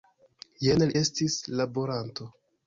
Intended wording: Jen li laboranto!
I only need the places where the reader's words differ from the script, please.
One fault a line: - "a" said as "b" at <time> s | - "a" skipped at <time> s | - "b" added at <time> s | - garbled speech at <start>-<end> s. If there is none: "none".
- "estis" added at 1.0 s